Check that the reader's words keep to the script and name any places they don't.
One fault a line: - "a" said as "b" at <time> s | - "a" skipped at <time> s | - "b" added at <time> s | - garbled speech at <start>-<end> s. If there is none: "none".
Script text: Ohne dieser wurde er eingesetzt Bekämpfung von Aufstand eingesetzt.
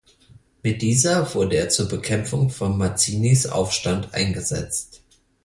- "Ohne" said as "Mit" at 0.6 s
- "eingesetzt" said as "zur" at 1.7 s
- "Mazzinis" added at 2.8 s